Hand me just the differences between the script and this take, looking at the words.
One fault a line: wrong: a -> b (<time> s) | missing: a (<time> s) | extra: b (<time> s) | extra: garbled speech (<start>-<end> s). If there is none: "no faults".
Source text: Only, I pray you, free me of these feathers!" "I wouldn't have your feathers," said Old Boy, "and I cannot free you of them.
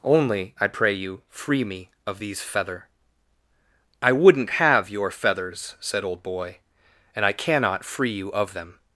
wrong: feathers -> feather (2.4 s)